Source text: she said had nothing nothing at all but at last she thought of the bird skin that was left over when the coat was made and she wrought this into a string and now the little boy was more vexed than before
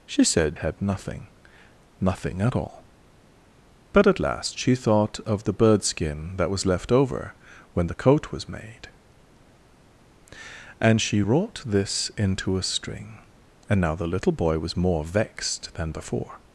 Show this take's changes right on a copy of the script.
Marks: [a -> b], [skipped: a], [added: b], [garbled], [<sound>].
she said had nothing nothing at all but at last she thought of the bird skin that was left over when the coat was made and she wrought this into a string and now the little boy was more vexed than before